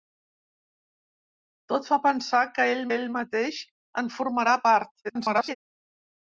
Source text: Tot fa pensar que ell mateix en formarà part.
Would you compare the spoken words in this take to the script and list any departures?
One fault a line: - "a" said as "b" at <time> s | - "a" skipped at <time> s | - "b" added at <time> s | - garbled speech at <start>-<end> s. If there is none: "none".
- "ell" added at 2.9 s
- garbled speech at 5.0-5.6 s